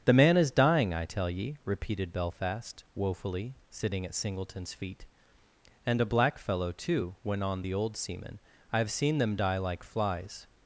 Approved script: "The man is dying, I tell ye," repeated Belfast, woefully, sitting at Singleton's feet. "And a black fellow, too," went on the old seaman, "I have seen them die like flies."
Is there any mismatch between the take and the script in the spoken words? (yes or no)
no